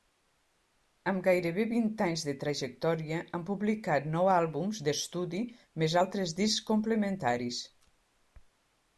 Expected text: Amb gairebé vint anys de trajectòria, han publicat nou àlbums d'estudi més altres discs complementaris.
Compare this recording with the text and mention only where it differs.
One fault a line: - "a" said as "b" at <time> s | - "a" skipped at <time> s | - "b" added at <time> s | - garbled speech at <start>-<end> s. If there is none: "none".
none